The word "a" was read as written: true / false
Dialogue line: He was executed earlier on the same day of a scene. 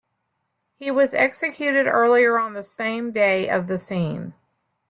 false